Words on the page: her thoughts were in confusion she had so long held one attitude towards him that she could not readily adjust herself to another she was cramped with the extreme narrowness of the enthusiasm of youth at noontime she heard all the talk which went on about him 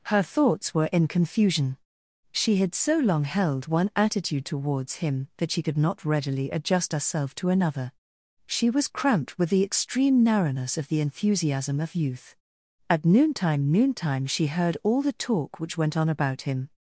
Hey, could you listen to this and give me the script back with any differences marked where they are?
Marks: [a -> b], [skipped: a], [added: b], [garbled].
her thoughts were in confusion she had so long held one attitude towards him that she could not readily adjust herself to another she was cramped with the extreme narrowness of the enthusiasm of youth at noontime [added: noontime] she heard all the talk which went on about him